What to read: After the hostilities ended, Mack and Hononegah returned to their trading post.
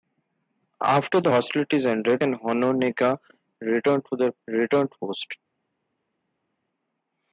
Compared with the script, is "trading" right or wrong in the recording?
wrong